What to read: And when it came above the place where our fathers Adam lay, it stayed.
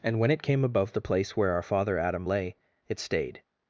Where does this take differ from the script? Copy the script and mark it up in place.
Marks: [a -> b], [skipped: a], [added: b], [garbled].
And when it came above the place where our [fathers -> father] Adam lay, it stayed.